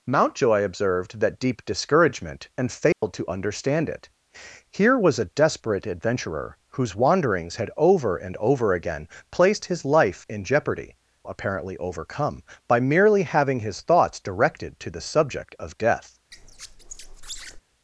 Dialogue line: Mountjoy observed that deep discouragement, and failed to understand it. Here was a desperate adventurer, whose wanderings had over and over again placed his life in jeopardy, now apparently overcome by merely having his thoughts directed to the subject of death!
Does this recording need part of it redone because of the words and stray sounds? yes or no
yes